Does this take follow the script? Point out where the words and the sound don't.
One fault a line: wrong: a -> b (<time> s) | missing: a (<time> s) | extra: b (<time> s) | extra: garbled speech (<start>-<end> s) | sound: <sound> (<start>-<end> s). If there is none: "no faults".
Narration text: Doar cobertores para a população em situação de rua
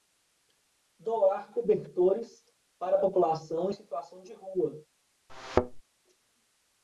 sound: thud (5.3-5.8 s)